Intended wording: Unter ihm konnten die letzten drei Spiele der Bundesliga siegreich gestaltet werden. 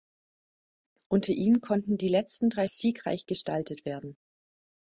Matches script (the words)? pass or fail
fail